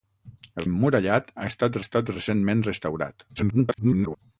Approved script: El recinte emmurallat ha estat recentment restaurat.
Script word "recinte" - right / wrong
wrong